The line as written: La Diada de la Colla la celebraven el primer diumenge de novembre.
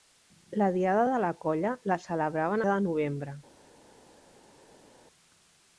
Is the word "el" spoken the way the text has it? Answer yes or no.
no